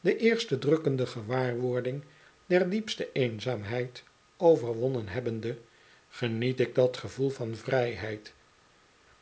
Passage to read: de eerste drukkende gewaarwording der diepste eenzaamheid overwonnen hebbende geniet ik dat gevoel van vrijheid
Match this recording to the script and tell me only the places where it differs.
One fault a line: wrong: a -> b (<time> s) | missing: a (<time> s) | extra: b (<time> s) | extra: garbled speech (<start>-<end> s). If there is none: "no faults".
no faults